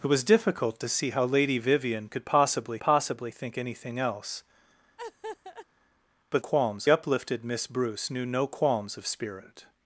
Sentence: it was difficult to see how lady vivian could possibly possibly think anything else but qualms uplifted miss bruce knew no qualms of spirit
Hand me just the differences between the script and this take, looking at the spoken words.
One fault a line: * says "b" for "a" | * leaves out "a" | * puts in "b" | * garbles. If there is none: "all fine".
all fine